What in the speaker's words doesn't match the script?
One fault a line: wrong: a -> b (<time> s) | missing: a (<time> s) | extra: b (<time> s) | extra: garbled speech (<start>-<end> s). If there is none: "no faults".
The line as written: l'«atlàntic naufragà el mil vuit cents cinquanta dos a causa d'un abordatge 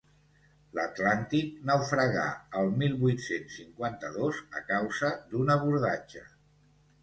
no faults